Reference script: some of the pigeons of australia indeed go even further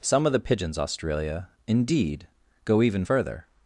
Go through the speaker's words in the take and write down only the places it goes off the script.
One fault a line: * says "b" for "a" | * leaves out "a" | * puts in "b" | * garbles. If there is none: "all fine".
* leaves out "of"